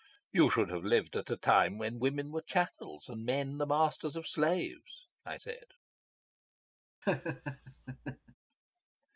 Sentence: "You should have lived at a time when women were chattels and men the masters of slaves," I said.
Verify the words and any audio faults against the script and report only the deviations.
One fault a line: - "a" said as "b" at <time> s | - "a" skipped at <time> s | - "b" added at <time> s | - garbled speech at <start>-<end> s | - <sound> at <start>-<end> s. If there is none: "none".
- laugh at 7.0-8.3 s